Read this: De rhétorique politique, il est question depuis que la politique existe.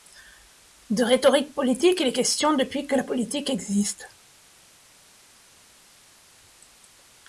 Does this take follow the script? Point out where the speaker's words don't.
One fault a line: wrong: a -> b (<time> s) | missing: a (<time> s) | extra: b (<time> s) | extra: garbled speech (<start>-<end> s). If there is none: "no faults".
no faults